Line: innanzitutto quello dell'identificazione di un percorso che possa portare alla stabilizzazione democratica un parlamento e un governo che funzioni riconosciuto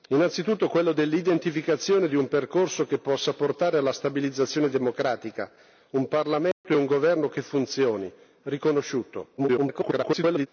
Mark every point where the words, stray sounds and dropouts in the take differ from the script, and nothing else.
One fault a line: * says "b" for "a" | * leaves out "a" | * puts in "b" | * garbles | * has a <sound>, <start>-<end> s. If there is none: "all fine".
* has a dropout, 6.5-6.6 s
* garbles